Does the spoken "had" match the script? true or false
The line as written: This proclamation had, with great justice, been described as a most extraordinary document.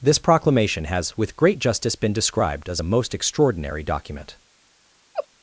false